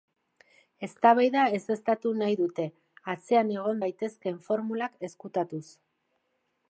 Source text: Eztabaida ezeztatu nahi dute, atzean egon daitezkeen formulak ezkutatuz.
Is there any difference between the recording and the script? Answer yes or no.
no